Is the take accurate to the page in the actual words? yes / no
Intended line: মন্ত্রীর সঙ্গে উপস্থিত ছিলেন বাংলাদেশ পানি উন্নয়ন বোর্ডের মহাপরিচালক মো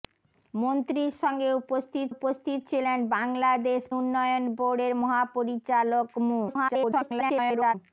no